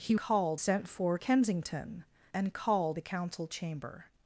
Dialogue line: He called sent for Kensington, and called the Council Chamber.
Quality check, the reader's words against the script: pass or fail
pass